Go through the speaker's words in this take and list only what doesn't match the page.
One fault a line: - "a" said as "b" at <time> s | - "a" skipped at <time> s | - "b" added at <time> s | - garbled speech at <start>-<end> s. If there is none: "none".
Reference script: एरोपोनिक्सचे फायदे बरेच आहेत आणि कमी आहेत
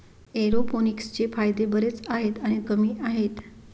none